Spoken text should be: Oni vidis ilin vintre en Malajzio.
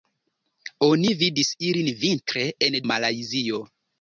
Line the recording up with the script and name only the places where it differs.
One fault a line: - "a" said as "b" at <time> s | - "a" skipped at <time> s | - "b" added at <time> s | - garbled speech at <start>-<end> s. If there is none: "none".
none